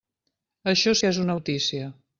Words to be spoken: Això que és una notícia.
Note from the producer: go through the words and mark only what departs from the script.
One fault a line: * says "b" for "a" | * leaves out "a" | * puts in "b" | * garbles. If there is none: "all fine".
all fine